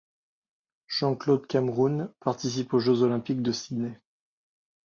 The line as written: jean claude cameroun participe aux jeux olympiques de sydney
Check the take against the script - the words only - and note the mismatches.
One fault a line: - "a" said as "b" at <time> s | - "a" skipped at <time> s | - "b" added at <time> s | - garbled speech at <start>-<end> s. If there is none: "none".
none